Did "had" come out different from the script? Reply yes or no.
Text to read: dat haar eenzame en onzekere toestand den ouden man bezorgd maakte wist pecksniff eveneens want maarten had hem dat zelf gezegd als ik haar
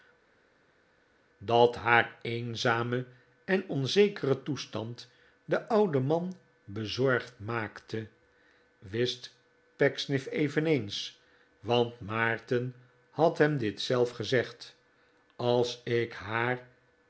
no